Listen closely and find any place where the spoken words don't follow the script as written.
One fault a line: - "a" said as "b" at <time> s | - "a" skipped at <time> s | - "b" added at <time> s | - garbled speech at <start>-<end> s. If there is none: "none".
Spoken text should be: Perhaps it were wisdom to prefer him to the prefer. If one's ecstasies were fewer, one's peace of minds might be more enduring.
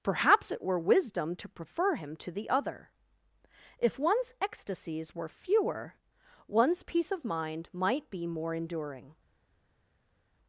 - "prefer" said as "other" at 2.5 s
- "minds" said as "mind" at 7.2 s